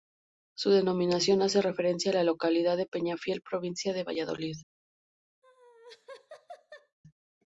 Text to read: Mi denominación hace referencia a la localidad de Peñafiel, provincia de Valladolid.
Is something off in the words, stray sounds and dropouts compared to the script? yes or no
yes